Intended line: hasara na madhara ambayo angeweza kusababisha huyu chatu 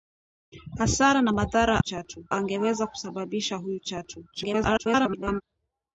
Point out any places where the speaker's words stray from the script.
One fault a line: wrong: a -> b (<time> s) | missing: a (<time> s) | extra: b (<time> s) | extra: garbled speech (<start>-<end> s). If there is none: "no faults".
wrong: ambayo -> chatu (1.8 s)
extra: garbled speech (4.3-5.4 s)